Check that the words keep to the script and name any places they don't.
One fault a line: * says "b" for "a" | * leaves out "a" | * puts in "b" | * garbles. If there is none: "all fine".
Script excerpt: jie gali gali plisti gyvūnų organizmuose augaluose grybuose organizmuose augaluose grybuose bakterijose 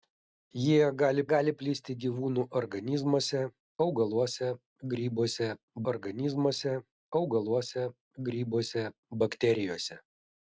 all fine